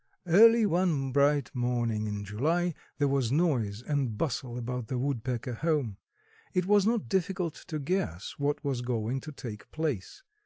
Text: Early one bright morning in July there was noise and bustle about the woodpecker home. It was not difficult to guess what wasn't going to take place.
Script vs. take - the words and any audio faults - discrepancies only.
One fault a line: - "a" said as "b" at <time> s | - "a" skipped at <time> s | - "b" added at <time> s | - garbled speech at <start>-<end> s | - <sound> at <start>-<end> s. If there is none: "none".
- "wasn't" said as "was" at 8.6 s